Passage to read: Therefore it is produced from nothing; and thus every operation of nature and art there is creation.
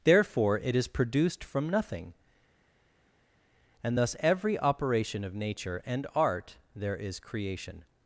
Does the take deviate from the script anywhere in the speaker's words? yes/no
no